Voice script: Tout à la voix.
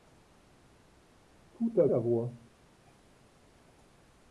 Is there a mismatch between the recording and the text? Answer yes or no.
no